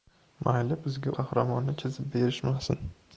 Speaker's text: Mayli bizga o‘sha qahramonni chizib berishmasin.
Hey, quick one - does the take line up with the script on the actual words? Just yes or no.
no